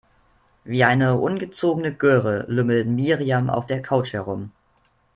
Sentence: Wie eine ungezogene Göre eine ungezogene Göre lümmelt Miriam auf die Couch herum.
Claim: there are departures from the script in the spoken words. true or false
true